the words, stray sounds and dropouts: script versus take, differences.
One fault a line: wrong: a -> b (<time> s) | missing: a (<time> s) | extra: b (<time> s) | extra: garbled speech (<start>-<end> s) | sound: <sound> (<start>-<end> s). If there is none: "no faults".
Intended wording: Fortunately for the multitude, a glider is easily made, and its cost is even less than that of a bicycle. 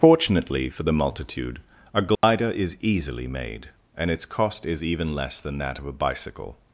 sound: dropout (2.2-2.2 s)